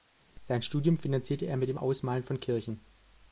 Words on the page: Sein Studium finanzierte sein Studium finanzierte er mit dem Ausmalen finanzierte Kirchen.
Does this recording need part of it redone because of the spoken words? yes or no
yes